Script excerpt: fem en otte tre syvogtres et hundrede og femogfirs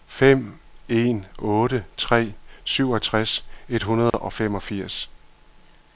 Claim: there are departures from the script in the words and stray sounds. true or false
true